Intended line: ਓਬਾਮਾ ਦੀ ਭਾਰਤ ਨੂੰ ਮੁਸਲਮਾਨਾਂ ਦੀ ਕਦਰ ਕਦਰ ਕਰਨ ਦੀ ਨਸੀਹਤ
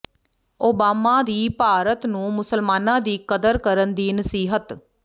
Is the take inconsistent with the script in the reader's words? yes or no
yes